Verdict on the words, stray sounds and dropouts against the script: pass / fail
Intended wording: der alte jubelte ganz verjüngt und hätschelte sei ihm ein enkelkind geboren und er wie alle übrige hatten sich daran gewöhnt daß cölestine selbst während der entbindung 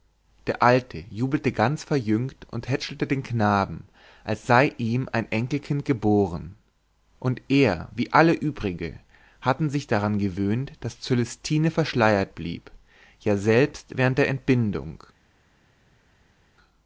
fail